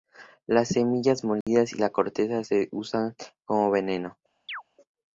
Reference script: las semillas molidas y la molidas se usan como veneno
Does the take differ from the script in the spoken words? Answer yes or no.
yes